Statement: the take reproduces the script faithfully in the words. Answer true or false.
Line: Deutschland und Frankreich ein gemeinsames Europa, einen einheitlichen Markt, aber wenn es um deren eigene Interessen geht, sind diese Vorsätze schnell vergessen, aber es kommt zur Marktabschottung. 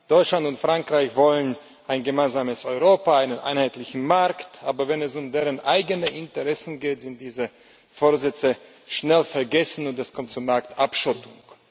false